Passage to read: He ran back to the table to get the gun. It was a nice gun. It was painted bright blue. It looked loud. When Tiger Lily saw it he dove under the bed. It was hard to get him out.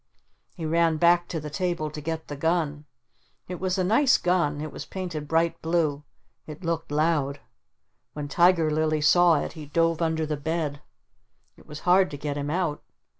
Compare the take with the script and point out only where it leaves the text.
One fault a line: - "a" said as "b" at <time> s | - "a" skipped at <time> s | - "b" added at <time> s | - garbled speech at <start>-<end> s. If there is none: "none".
none